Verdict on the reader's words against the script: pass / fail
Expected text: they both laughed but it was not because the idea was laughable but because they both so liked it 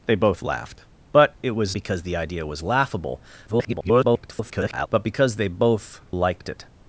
fail